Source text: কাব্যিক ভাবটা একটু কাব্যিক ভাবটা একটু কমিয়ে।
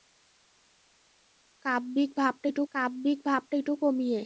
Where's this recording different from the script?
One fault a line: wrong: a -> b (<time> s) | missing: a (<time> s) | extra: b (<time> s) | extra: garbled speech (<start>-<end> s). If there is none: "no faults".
no faults